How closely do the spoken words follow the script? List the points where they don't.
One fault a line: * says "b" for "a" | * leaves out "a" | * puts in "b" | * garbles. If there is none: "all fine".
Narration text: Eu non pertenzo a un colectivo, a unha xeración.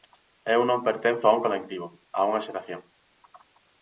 all fine